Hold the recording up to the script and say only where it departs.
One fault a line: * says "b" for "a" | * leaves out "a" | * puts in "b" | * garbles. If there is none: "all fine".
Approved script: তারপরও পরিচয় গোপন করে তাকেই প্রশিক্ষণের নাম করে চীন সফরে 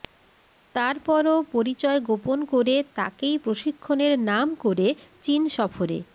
all fine